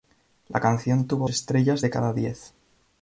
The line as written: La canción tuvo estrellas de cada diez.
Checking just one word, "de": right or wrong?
right